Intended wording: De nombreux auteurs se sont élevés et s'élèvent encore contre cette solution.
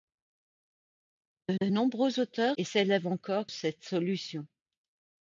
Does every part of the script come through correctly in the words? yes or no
no